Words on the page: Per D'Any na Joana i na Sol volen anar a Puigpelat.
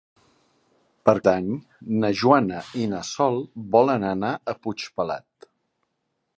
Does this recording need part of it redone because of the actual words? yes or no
no